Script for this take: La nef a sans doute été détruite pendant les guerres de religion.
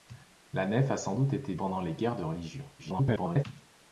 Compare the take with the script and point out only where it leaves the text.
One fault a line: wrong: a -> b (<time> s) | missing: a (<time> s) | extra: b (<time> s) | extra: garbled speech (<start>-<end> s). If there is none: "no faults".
missing: détruite (1.6 s)
extra: garbled speech (2.8-3.4 s)